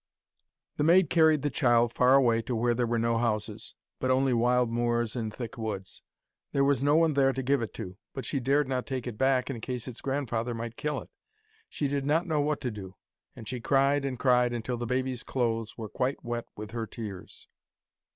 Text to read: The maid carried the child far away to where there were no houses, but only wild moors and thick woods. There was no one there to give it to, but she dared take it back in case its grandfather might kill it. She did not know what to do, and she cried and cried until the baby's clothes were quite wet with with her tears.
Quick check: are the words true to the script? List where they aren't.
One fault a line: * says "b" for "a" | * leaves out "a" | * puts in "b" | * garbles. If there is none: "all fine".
* puts in "not"
* leaves out "with"